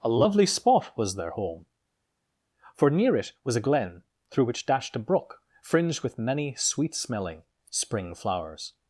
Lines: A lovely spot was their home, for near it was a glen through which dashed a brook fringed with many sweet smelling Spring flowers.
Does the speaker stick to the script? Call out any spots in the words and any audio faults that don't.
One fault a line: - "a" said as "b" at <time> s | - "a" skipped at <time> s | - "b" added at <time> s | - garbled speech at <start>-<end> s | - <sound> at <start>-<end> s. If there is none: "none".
none